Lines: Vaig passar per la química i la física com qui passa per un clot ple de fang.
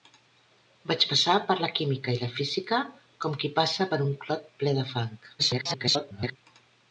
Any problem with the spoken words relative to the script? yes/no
yes